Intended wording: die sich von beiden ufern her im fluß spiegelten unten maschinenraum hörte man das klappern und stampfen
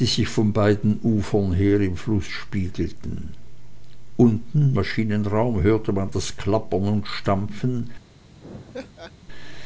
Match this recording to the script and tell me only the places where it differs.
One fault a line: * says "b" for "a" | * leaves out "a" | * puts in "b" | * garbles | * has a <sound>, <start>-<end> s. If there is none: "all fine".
* has a laugh, 8.4-9.1 s